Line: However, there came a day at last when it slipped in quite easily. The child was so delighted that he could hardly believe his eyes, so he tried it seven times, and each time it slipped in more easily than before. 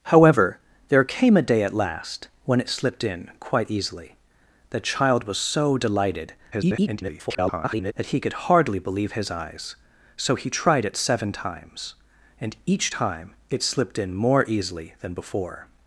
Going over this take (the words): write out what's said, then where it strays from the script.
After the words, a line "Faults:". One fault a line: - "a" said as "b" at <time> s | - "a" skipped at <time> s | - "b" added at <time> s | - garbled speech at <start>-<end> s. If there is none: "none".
However, there came a day at last when it slipped in quite easily. The child was so delighted [garbled] that he could hardly believe his eyes, so he tried it seven times, and each time it slipped in more easily than before.
Faults:
- garbled speech at 6.5-7.9 s